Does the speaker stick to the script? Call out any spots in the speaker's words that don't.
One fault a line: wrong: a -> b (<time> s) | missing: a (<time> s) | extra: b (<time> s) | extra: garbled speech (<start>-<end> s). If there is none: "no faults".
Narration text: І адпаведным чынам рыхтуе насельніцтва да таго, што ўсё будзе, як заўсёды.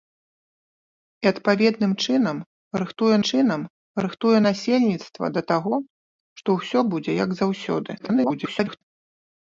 extra: чынам рыхтуе (3.3 s)
extra: garbled speech (8.0-8.8 s)